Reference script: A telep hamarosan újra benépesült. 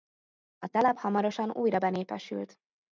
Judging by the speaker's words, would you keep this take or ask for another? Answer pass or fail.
pass